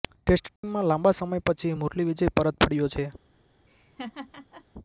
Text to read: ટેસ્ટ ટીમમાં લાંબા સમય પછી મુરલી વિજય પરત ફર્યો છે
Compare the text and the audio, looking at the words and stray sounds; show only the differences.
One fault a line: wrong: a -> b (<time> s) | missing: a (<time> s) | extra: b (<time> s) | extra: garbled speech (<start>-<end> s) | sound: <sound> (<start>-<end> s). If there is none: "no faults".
sound: dropout (0.6-0.6 s)
sound: laugh (3.7-4.6 s)